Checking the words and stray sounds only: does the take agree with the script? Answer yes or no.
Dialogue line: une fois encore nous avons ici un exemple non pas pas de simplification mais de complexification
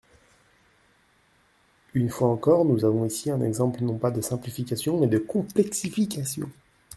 no